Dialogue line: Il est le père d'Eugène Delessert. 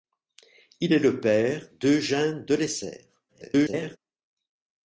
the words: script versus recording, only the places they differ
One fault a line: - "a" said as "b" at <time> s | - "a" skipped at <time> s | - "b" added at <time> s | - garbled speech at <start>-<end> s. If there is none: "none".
- garbled speech at 3.3-4.0 s